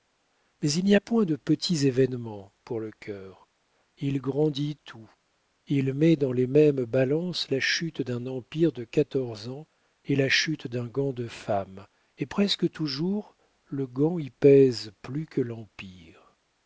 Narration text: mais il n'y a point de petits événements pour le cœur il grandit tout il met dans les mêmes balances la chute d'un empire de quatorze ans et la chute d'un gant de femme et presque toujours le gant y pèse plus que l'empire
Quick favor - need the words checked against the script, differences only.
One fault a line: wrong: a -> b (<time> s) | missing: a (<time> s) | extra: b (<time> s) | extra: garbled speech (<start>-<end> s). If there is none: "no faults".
no faults